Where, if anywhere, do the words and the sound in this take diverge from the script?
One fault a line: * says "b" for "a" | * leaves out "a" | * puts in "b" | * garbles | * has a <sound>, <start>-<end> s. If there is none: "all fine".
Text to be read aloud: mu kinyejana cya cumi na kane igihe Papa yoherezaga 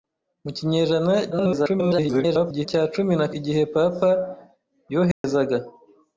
* garbles
* leaves out "kane"
* has a dropout, 5.1-5.2 s